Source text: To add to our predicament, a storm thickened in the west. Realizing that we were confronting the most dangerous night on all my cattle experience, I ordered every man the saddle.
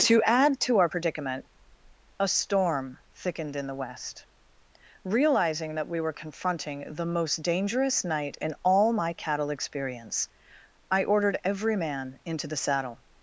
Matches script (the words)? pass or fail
fail